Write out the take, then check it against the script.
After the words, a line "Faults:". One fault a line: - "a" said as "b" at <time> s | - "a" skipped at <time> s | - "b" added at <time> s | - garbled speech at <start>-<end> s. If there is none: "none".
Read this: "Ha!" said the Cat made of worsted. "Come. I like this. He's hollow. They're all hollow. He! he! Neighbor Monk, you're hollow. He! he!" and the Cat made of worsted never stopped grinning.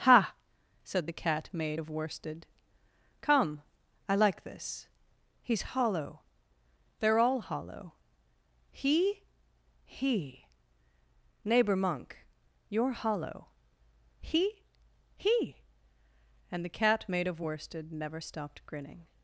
"Ha!" said the Cat made of worsted. "Come. I like this. He's hollow. They're all hollow. He! he! Neighbor Monk, you're hollow. He! he!" and the Cat made of worsted never stopped grinning.
Faults:
none